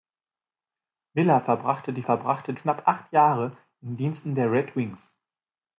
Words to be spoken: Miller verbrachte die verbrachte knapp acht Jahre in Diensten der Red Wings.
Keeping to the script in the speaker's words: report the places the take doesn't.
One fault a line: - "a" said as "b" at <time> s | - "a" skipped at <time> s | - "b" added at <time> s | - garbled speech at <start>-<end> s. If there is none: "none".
none